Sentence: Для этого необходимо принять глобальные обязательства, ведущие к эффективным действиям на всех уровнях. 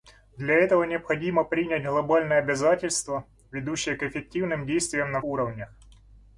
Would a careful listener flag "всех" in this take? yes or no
yes